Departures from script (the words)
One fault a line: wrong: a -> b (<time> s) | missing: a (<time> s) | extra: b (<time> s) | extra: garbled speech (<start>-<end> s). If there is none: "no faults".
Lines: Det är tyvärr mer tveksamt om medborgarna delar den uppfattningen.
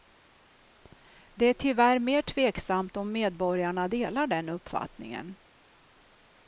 no faults